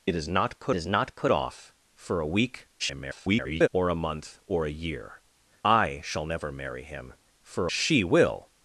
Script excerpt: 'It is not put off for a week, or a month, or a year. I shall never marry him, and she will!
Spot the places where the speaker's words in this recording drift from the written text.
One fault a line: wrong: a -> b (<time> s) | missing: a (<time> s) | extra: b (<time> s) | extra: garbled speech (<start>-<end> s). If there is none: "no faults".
extra: is not put (0.7 s)
extra: garbled speech (2.8-3.7 s)
wrong: and -> for (7.4 s)